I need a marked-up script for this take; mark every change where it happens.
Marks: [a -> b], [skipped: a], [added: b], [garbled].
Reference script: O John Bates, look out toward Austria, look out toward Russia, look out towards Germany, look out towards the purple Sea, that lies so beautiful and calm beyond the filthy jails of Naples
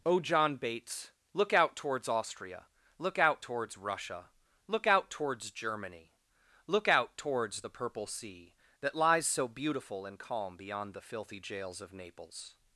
O John Bates, look out [toward -> towards] Austria, look out [toward -> towards] Russia, look out towards Germany, look out towards the purple Sea, that lies so beautiful and calm beyond the filthy jails of Naples